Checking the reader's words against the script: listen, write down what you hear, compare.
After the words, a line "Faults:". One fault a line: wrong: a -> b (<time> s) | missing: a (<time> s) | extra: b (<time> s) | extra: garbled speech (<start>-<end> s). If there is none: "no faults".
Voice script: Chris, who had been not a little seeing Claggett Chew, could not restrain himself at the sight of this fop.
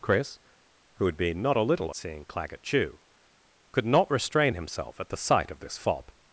Chris, who had been not a little seeing Claggett Chew, could not restrain himself at the sight of this fop.
Faults:
no faults